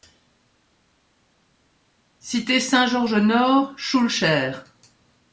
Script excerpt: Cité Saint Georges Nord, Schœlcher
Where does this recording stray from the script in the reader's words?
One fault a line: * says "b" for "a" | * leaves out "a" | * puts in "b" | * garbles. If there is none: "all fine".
all fine